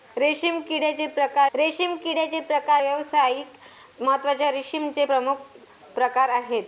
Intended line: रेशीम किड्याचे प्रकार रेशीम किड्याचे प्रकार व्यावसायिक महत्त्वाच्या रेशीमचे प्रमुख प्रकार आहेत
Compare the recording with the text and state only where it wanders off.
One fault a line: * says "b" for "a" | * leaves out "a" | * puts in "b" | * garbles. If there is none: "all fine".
all fine